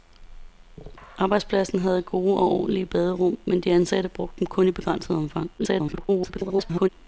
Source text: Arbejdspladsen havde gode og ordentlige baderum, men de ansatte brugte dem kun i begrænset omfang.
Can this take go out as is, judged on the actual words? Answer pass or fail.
fail